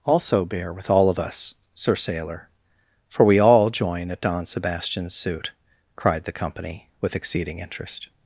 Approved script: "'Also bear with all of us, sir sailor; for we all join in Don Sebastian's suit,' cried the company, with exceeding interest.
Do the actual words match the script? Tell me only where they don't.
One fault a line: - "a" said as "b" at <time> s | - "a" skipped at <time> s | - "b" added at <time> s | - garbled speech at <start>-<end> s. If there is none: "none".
- "in" said as "at" at 4.1 s